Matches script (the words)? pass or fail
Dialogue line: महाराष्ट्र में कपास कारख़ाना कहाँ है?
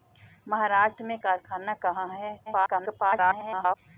fail